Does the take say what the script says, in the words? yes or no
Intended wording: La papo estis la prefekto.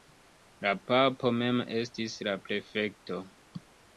no